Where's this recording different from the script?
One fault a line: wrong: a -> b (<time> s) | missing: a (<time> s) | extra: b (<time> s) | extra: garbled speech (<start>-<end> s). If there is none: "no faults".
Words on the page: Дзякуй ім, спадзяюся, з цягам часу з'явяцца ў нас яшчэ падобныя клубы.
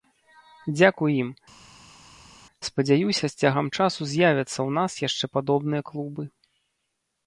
no faults